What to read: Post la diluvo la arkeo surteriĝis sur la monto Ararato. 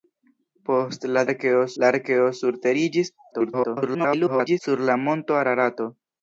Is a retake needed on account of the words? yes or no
yes